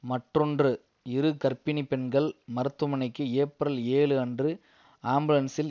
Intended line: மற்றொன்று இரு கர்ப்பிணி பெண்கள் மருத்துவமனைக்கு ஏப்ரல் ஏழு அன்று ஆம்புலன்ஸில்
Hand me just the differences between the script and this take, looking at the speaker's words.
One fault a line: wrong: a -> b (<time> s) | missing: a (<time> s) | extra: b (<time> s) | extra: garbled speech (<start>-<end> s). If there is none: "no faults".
no faults